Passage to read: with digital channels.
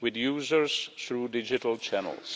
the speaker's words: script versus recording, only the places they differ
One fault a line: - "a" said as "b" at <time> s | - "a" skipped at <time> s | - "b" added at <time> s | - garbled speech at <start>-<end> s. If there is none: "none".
- "users through" added at 0.1 s